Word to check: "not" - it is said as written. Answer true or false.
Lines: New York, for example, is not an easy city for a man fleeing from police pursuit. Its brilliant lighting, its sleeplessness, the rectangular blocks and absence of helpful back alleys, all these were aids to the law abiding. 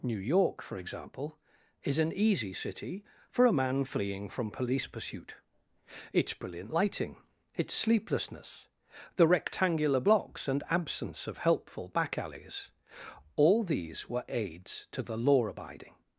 false